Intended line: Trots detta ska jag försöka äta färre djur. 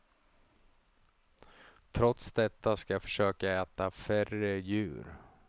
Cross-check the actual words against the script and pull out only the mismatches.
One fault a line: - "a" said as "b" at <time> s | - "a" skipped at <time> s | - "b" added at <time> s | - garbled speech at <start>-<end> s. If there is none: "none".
none